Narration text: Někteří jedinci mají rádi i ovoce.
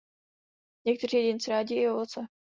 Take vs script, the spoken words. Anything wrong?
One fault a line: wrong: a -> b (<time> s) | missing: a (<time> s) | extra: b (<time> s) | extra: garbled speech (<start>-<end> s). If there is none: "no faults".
missing: mají (1.5 s)